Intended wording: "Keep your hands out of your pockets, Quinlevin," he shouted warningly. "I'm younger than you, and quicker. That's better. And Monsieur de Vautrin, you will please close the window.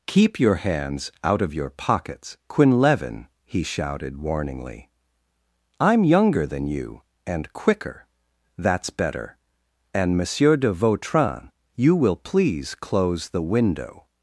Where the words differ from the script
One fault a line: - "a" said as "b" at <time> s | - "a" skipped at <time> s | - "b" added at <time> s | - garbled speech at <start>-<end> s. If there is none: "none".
none